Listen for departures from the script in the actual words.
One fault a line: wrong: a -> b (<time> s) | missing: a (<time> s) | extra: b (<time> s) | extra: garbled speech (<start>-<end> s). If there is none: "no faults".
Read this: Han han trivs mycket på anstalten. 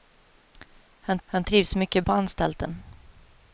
no faults